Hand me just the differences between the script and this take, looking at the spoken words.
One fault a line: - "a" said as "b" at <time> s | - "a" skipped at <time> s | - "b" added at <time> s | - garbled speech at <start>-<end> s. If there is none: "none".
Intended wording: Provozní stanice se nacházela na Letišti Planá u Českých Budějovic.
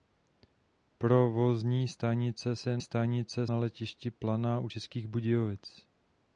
- "nacházela" said as "stanice" at 2.8 s